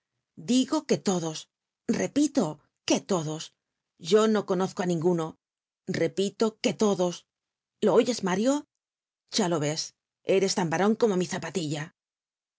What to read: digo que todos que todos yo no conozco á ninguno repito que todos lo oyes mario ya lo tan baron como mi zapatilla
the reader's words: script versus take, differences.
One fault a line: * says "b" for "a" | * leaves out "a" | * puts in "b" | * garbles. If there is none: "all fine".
* puts in "repito"
* puts in "ves eres"